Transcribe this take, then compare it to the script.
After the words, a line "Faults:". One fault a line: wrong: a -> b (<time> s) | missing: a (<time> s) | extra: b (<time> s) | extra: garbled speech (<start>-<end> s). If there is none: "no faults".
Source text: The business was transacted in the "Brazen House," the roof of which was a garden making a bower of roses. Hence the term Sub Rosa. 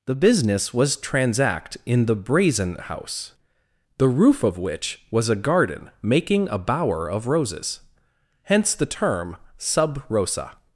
The business was transact in the "Brazen House," the roof of which was a garden making a bower of roses. Hence the term Sub Rosa.
Faults:
wrong: transacted -> transact (1.0 s)